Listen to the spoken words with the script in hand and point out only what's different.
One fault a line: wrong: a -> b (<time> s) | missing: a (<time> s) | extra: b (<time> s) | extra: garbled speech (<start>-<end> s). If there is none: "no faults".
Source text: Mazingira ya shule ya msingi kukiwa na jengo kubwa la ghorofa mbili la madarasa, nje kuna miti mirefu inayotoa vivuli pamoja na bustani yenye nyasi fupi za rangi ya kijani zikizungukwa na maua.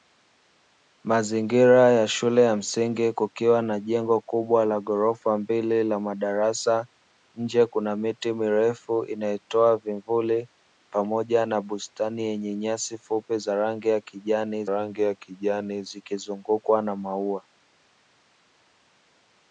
extra: rangi ya kijani (14.7 s)